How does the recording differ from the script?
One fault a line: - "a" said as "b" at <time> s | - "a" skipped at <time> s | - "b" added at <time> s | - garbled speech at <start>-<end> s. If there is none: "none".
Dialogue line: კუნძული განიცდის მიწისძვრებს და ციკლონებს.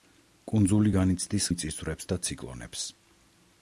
none